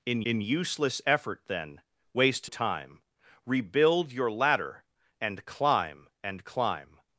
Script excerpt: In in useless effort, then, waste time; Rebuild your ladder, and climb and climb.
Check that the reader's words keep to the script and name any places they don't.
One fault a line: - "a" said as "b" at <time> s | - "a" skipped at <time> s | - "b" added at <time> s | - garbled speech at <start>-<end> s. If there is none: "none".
none